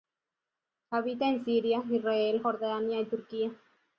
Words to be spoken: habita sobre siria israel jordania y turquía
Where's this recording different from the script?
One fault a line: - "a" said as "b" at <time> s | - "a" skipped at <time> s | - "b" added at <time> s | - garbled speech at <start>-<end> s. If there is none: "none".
- "sobre" said as "en" at 1.3 s